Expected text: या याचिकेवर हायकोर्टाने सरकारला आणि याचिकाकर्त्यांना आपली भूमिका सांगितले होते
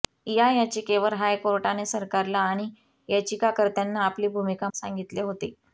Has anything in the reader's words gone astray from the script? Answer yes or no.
no